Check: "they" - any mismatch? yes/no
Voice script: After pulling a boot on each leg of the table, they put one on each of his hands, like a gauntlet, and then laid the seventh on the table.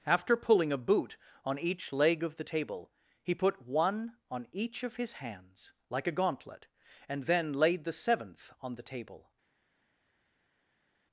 yes